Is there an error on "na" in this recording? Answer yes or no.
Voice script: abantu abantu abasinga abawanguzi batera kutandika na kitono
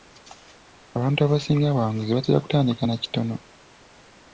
no